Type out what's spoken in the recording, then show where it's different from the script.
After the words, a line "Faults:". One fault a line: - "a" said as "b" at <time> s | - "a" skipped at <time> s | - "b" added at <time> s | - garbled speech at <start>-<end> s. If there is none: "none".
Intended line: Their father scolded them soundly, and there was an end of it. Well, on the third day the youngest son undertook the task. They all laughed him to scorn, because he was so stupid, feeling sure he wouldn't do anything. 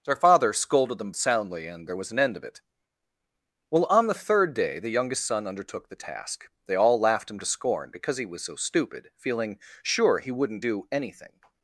Their father scolded them soundly, and there was an end of it. Well, on the third day the youngest son undertook the task. They all laughed him to scorn, because he was so stupid, feeling sure he wouldn't do anything.
Faults:
none